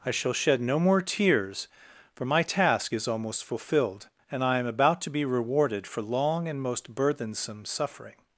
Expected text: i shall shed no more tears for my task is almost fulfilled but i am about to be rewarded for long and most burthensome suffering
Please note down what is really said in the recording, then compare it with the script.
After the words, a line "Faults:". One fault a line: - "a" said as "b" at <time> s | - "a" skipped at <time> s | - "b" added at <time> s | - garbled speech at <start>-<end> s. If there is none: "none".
i shall shed no more tears for my task is almost fulfilled and i am about to be rewarded for long and most burthensome suffering
Faults:
- "but" said as "and" at 4.3 s